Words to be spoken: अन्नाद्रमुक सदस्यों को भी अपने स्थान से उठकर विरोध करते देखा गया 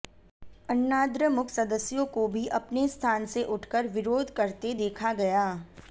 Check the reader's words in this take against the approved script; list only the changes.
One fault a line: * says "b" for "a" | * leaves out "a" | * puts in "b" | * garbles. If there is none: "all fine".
all fine